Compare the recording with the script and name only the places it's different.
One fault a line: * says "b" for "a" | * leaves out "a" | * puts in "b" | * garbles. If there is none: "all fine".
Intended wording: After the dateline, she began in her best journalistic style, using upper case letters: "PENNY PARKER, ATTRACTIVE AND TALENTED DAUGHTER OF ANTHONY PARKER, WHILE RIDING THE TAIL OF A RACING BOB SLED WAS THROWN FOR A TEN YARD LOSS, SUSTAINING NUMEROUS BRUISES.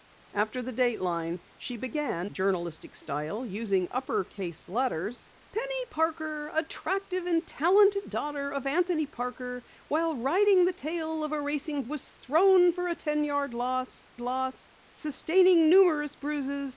* leaves out "in her best"
* leaves out "BOB SLED"
* puts in "LOSS"